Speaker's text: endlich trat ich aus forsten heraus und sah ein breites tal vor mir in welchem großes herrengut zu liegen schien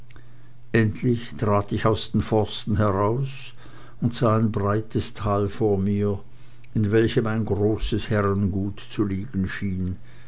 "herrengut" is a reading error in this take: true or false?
false